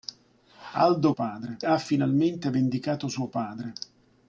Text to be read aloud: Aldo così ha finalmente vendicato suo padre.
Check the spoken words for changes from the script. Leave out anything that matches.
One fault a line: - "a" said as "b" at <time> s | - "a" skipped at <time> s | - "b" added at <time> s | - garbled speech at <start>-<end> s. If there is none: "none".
- "così" said as "padre" at 1.1 s